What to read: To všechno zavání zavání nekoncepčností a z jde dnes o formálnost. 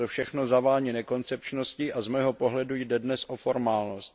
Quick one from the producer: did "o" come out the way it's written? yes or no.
yes